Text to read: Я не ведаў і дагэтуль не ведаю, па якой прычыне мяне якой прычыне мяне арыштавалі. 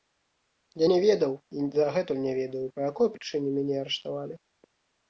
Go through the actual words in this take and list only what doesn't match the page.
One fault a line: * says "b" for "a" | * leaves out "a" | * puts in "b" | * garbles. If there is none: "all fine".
* leaves out "якой прычыне мяне"